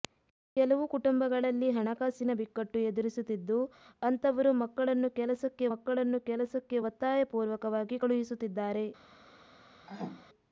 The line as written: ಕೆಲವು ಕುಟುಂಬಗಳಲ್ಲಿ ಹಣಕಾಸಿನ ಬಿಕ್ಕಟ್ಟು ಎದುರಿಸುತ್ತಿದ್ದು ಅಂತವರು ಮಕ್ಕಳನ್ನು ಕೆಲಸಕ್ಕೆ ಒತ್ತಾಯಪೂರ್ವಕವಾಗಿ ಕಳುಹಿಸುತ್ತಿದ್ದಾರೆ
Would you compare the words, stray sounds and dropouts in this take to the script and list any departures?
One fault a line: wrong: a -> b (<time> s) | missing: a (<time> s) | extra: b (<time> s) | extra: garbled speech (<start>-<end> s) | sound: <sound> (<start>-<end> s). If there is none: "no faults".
extra: ಮಕ್ಕಳನ್ನು ಕೆಲಸಕ್ಕೆ (5.7 s)
sound: throat clearing (9.9-10.3 s)